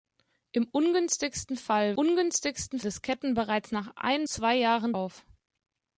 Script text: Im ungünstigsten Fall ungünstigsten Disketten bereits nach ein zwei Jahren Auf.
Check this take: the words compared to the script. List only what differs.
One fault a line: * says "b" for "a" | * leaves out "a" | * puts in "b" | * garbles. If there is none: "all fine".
all fine